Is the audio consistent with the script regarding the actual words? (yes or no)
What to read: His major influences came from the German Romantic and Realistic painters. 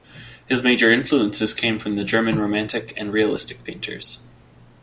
yes